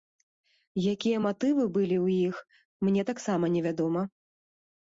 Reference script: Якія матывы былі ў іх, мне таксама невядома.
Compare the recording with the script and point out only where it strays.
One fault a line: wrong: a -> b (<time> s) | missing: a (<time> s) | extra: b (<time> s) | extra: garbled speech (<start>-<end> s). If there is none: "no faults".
no faults